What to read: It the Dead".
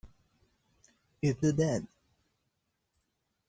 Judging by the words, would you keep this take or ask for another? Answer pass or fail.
pass